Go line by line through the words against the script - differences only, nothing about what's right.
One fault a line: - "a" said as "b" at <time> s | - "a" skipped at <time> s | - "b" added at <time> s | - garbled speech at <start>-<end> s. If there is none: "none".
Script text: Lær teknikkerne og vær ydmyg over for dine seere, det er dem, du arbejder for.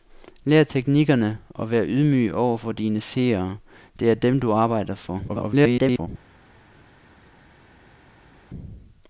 - garbled speech at 5.3-6.1 s